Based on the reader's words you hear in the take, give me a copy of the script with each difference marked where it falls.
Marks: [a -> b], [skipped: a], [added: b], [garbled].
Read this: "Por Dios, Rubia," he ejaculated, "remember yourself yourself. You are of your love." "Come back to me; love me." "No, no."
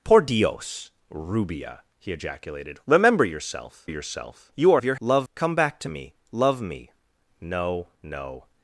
"Por Dios, Rubia," he ejaculated, "remember yourself yourself. You are of your love." "Come back to me; love me." "No, no."